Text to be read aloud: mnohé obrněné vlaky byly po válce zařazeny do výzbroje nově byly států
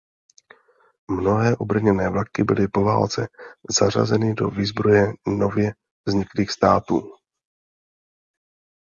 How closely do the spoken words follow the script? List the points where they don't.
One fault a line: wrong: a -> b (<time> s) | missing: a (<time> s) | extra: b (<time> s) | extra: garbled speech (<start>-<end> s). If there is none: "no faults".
wrong: byly -> vzniklých (6.1 s)